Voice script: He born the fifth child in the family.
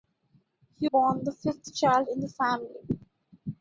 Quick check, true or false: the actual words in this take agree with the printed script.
true